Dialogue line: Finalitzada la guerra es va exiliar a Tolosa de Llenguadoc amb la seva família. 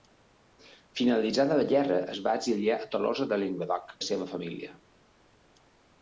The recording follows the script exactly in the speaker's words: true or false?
false